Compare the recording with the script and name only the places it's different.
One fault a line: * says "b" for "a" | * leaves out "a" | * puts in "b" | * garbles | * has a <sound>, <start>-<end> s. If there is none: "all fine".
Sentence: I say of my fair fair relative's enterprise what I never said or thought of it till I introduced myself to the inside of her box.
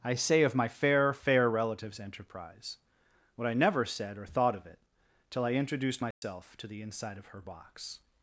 * has a dropout, 6.1-6.2 s